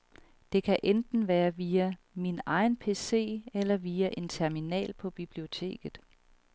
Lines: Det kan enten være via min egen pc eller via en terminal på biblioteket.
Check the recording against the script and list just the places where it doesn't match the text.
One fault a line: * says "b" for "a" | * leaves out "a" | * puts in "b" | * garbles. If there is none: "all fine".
all fine